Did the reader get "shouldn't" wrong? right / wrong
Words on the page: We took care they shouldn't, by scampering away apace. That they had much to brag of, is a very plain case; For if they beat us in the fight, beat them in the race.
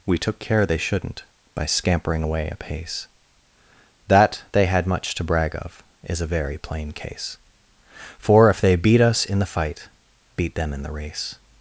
right